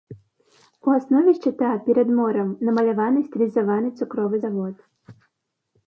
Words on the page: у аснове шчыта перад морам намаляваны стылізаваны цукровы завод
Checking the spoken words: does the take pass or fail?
pass